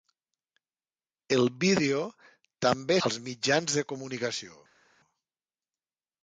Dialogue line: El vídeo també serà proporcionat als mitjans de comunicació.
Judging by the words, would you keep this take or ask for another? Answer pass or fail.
fail